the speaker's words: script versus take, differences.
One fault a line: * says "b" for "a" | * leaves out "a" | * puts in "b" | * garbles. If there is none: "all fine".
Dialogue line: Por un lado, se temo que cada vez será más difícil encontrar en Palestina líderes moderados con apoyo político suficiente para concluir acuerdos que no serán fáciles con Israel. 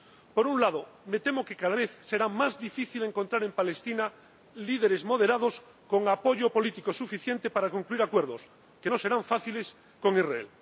* says "me" for "se"